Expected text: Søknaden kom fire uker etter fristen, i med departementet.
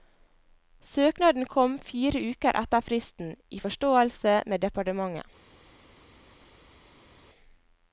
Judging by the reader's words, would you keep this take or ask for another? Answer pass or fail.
fail